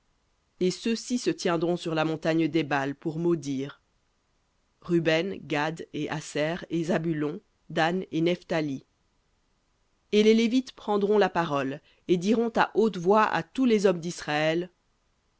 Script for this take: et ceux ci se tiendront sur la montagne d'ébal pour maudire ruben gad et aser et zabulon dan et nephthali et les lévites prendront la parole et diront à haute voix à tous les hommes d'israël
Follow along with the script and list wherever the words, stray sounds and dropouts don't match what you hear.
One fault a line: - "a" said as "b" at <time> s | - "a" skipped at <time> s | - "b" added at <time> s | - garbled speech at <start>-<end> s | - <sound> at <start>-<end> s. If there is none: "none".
none